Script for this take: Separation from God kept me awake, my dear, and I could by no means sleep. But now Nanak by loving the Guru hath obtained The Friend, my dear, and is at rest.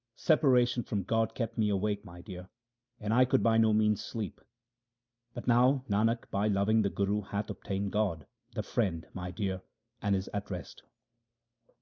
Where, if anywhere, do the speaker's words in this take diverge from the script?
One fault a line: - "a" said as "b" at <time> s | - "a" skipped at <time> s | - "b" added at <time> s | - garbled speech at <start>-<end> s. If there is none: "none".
- "God" added at 7.9 s